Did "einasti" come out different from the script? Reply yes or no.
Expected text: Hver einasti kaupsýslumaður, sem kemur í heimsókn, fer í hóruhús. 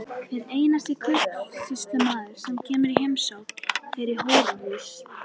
no